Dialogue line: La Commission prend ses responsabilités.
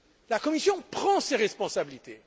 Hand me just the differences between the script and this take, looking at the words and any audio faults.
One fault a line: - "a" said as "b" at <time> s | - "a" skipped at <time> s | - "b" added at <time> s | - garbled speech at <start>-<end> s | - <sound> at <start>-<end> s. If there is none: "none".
none